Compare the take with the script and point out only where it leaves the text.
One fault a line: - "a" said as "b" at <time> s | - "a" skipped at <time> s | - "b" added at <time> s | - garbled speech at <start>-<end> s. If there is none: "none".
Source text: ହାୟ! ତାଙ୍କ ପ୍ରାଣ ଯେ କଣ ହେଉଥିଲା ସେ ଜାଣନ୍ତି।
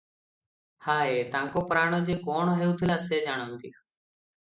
none